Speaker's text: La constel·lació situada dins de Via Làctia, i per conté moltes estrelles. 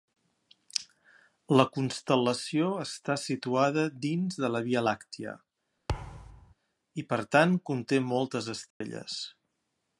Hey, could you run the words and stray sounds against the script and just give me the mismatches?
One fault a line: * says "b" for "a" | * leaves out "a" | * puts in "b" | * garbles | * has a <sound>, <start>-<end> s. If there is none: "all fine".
* puts in "està"
* puts in "la"
* has a thud, 5.9-6.5 s
* puts in "tant"
* has a dropout, 8.7-8.8 s